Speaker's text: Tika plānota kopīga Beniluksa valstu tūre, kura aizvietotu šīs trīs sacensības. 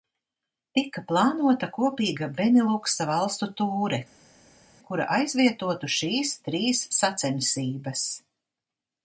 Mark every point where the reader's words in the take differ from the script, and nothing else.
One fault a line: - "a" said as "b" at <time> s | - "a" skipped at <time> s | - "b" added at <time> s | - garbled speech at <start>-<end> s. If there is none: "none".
none